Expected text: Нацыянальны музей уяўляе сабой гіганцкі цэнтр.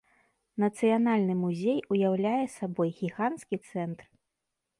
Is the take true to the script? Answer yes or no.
yes